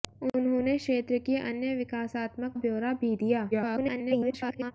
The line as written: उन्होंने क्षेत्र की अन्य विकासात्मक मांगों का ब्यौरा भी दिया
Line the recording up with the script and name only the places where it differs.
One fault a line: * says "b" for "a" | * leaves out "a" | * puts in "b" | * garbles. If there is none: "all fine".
* leaves out "मांगों का"
* garbles